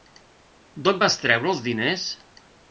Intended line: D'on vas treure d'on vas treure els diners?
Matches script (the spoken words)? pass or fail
fail